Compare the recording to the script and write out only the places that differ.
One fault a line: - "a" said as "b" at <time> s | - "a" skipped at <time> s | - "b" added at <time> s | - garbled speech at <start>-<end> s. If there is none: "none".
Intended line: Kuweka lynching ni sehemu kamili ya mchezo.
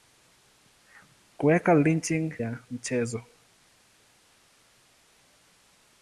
- "ni sehemu kamili" skipped at 2.3 s